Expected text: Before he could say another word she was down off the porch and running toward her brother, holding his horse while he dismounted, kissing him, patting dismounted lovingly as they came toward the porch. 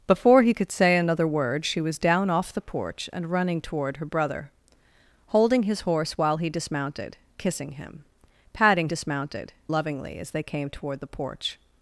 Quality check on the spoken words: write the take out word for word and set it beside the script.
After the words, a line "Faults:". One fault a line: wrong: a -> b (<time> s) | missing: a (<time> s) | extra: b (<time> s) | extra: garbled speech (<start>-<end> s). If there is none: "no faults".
Before he could say another word she was down off the porch and running toward her brother, holding his horse while he dismounted, kissing him, patting dismounted lovingly as they came toward the porch.
Faults:
no faults